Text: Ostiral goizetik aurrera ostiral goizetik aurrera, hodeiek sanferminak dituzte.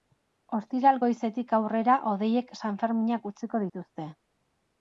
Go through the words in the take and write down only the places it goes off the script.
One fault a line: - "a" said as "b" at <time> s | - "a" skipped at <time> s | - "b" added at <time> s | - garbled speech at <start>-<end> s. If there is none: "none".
- "ostiral goizetik aurrera" skipped at 2.0 s
- "utziko" added at 3.3 s